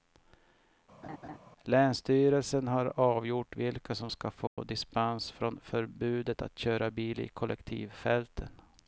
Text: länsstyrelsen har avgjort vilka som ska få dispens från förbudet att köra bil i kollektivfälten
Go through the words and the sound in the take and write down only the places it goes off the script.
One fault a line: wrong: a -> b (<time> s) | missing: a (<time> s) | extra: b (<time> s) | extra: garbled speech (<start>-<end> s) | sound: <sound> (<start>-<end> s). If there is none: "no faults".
sound: laugh (1.0-1.4 s)
sound: dropout (4.5-4.6 s)